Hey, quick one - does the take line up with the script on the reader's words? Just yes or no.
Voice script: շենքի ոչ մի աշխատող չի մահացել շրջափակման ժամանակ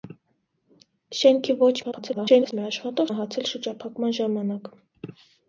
no